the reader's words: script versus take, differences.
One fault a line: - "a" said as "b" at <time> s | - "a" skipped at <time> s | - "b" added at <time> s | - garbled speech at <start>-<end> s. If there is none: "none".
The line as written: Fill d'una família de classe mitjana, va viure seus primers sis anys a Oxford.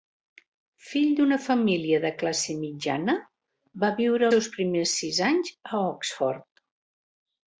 none